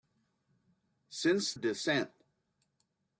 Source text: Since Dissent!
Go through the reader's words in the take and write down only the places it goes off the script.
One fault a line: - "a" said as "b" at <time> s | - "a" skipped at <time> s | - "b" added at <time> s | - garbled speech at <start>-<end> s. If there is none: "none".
none